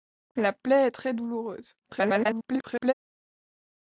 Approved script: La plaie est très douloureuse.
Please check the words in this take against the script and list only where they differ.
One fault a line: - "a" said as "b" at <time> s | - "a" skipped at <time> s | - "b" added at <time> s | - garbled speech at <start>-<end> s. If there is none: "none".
- garbled speech at 1.8-2.9 s